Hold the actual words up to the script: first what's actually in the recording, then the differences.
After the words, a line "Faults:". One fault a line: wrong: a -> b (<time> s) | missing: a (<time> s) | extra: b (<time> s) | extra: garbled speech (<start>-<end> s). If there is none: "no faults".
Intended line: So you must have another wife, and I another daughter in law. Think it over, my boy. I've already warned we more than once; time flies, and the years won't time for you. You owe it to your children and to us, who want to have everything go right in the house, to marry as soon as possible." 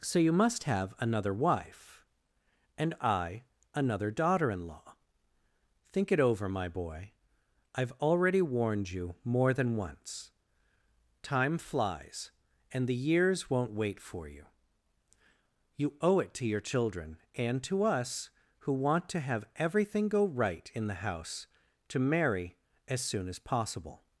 So you must have another wife, and I another daughter in law. Think it over, my boy. I've already warned you more than once; time flies, and the years won't wait for you. You owe it to your children and to us, who want to have everything go right in the house, to marry as soon as possible."
Faults:
wrong: we -> you (8.9 s)
wrong: time -> wait (13.7 s)